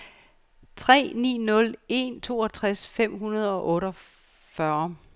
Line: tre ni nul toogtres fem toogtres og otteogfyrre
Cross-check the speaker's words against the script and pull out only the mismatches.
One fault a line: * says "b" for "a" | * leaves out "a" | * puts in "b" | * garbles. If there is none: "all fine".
* puts in "en"
* says "hundrede" for "toogtres"